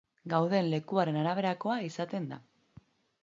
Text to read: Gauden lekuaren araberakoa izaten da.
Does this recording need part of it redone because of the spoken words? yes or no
no